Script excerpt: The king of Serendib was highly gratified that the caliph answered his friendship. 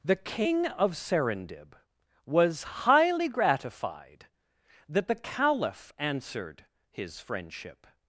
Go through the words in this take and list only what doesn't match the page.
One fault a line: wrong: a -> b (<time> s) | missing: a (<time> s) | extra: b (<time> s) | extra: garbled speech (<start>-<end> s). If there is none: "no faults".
no faults